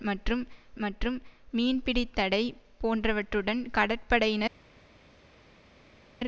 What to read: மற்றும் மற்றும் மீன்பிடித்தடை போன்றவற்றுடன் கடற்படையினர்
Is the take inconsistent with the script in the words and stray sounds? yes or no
no